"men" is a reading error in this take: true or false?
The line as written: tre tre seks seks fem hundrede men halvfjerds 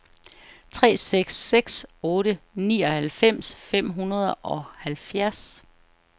true